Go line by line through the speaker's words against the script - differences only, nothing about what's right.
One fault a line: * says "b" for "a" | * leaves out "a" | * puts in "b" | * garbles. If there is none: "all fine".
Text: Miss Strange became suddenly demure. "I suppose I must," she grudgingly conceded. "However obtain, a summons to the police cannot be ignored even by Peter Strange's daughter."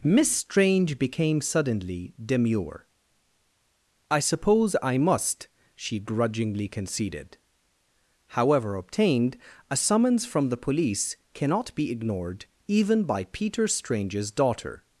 * says "obtained" for "obtain"
* says "from" for "to"